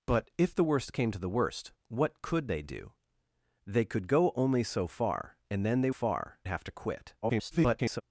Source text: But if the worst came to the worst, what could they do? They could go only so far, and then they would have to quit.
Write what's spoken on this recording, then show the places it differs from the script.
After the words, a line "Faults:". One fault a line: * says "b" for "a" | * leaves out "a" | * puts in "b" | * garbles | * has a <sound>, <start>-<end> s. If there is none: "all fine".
But if the worst came to the worst, what could they do? They could go only so far, and then they far have to quit. [garbled]
Faults:
* says "far" for "would"
* garbles